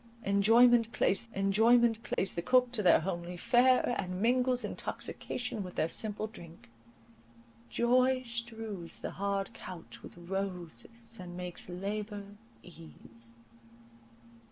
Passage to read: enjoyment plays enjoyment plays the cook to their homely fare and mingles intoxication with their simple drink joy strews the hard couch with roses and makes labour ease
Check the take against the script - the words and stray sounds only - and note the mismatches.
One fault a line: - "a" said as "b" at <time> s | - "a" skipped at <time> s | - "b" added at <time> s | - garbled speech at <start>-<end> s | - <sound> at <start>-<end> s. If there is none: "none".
- dropout at 2.1-2.2 s